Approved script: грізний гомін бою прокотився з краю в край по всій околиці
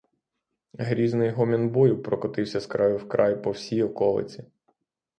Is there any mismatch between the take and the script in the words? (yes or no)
no